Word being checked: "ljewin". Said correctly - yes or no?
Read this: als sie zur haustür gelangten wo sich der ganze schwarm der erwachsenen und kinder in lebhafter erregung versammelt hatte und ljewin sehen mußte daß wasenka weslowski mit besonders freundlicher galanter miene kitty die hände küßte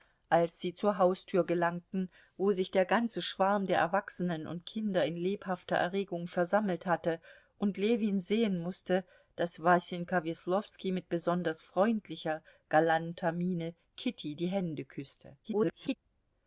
yes